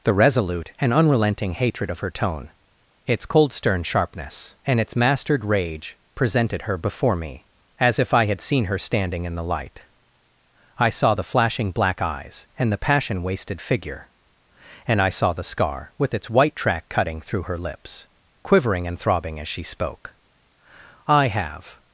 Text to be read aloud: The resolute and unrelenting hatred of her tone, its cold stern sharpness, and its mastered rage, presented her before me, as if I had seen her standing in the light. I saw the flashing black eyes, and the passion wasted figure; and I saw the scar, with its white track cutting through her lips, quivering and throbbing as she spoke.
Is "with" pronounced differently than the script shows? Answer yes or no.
no